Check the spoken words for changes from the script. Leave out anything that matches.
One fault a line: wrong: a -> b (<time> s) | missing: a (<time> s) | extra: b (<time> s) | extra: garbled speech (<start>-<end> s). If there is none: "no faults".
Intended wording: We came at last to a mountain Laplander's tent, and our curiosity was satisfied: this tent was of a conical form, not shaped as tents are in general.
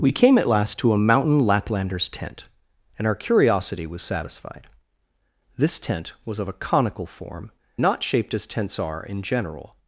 no faults